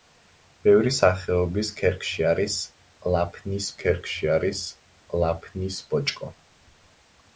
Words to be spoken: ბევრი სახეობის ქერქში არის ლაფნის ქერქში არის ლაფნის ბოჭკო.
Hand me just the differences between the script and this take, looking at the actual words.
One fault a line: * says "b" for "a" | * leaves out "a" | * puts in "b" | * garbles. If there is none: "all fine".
all fine